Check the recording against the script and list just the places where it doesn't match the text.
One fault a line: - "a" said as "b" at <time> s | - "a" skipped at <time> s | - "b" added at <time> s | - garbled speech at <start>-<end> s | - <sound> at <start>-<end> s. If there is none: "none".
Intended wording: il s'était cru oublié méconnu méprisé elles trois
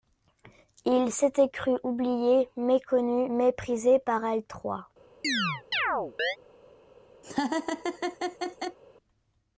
- "par" added at 4.0 s
- chirp at 5.2-6.4 s
- laugh at 7.2-8.8 s